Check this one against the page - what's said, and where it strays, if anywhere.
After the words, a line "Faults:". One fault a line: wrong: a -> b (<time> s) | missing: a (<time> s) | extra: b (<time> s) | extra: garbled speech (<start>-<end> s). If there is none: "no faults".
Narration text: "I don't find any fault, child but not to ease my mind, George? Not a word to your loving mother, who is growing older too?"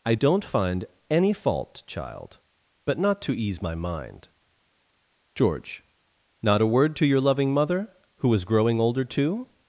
"I don't find any fault, child but not to ease my mind, George? Not a word to your loving mother, who is growing older too?"
Faults:
no faults